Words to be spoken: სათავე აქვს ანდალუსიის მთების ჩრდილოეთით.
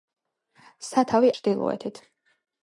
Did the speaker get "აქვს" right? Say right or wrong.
wrong